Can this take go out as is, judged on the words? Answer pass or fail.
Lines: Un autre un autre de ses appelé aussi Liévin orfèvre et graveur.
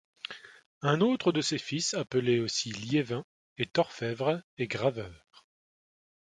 fail